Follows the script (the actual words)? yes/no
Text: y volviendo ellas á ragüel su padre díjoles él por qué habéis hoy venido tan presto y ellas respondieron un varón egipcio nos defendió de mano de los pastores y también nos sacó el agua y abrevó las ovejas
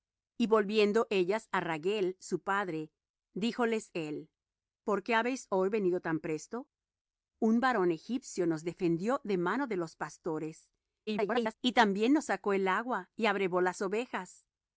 no